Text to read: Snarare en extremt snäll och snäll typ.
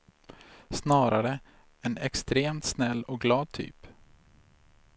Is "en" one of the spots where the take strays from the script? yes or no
no